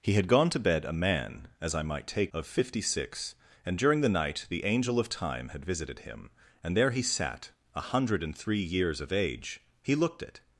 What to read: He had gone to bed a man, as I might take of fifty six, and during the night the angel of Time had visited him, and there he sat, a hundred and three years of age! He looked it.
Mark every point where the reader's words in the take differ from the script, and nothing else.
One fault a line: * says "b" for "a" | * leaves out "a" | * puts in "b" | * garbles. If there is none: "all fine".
all fine